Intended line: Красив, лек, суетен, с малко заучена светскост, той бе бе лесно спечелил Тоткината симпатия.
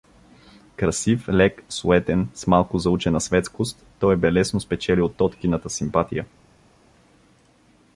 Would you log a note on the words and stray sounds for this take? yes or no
yes